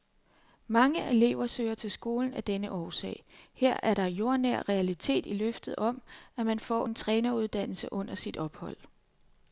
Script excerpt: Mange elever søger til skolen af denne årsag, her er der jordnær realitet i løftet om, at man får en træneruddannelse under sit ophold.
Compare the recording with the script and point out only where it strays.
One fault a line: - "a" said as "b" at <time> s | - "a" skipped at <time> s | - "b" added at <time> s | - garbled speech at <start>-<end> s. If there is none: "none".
none